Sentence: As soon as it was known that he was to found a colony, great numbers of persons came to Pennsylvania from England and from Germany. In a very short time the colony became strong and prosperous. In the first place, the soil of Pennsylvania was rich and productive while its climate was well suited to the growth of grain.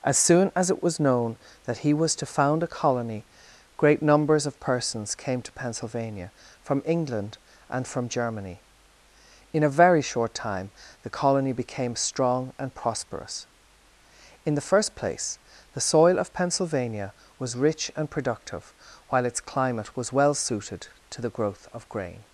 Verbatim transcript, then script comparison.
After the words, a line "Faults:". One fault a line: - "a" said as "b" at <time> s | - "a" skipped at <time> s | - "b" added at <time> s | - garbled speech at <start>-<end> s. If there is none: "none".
As soon as it was known that he was to found a colony, great numbers of persons came to Pennsylvania from England and from Germany. In a very short time the colony became strong and prosperous. In the first place, the soil of Pennsylvania was rich and productive while its climate was well suited to the growth of grain.
Faults:
none